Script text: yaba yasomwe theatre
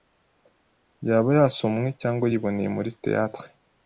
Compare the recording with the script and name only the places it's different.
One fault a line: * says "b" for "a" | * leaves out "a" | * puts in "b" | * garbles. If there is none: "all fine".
* puts in "cyangwa yiboneye muri"